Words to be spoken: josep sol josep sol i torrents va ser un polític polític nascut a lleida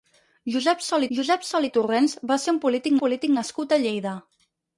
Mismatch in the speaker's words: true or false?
false